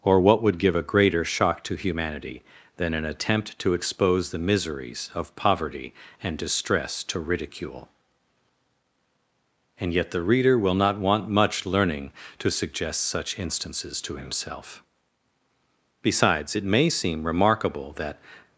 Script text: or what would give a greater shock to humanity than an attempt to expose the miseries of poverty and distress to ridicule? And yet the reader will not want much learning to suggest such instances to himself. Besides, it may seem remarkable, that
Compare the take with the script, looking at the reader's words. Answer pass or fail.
pass